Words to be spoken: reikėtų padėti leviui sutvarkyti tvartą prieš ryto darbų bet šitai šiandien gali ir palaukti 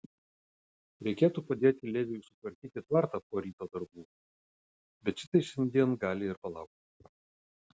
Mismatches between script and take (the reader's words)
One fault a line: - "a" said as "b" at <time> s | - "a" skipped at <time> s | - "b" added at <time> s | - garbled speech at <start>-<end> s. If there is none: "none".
- "prieš" said as "po" at 3.3 s